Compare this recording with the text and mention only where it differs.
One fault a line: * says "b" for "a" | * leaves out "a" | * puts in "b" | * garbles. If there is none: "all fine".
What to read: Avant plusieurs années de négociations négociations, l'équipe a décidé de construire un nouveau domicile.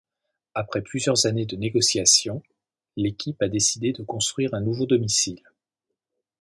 * says "Après" for "Avant"
* leaves out "négociations"